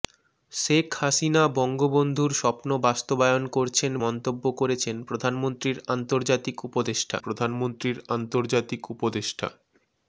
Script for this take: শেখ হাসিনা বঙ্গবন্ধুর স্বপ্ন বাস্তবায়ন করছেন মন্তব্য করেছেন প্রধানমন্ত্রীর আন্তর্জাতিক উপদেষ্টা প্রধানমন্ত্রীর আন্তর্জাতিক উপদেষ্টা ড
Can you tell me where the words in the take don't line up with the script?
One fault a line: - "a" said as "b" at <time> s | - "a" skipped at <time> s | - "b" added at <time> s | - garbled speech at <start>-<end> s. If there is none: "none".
none